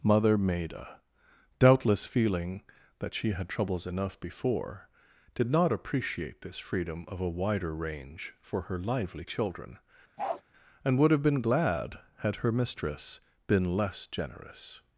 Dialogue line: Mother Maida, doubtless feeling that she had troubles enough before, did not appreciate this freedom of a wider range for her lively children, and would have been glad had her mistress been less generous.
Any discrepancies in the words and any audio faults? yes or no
yes